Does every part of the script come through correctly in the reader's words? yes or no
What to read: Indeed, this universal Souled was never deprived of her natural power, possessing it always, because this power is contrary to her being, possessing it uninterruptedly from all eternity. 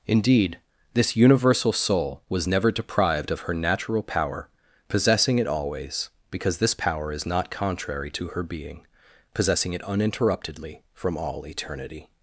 no